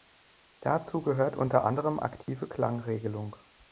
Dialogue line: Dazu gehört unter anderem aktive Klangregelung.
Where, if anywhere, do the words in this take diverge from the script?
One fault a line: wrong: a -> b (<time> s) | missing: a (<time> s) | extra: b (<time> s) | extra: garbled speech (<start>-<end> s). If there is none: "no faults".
no faults